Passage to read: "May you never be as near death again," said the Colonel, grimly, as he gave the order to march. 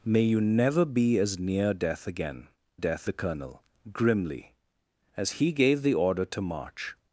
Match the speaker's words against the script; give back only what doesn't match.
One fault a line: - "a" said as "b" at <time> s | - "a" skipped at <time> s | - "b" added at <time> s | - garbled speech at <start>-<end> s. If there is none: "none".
- "said" said as "death" at 2.7 s